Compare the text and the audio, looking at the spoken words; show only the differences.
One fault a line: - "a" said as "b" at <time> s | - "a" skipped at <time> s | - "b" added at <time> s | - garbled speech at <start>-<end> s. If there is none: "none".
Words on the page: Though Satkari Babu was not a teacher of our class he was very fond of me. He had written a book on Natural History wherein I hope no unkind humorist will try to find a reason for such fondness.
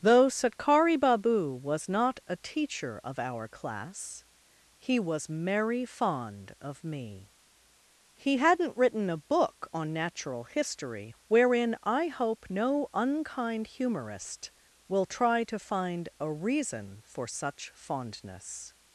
- "very" said as "merry" at 5.3 s
- "had" said as "hadn't" at 8.4 s